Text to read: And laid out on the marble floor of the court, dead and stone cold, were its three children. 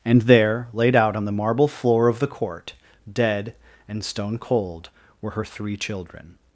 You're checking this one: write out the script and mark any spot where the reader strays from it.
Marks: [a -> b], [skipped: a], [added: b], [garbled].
And [added: there] laid out on the marble floor of the court, dead and stone cold, were [its -> her] three children.